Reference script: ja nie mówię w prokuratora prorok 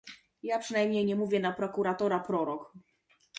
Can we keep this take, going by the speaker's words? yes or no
no